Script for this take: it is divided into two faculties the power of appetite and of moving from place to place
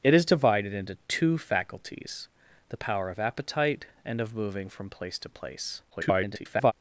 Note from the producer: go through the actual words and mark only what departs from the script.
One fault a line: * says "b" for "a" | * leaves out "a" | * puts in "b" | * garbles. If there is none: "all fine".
* garbles